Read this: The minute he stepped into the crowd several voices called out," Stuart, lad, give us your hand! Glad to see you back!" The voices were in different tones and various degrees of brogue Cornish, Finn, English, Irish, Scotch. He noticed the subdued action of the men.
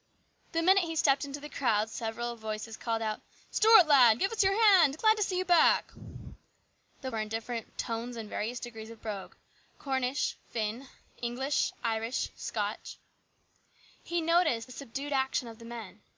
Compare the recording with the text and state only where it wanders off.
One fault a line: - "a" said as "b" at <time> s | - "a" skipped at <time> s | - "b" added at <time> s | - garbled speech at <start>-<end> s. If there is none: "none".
- "voices" skipped at 7.1 s